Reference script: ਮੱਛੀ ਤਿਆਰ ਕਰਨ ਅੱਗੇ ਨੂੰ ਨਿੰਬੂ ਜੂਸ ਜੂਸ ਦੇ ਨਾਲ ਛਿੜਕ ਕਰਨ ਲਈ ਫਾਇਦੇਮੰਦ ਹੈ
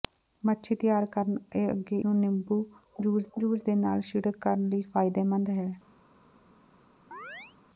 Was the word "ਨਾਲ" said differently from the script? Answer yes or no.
no